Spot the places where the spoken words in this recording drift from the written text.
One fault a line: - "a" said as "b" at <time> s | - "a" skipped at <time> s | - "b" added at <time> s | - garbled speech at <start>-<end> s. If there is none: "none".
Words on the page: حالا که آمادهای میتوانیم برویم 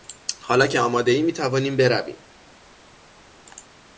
none